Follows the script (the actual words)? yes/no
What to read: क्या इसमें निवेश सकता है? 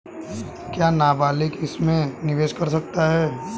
no